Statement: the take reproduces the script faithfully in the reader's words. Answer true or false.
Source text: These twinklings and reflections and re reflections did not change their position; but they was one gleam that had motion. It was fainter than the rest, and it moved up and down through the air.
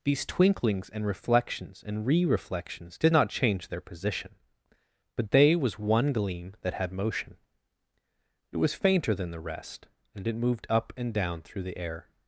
true